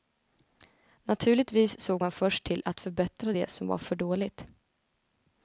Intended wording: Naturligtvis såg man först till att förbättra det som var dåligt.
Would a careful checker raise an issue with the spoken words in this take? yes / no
yes